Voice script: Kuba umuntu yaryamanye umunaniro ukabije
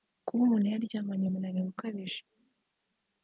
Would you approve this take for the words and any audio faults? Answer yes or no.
yes